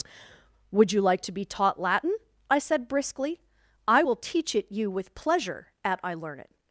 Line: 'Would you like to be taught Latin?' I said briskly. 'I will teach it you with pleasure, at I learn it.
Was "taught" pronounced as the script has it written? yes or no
yes